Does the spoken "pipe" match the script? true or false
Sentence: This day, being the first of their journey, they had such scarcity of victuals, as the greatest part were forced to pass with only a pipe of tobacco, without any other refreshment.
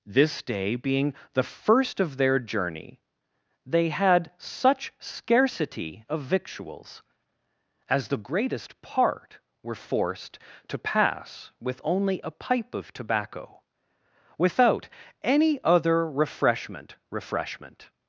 true